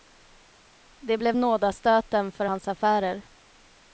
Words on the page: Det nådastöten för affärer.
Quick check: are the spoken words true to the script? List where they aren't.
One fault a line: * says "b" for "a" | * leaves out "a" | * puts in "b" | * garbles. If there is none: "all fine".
* puts in "blev"
* puts in "hans"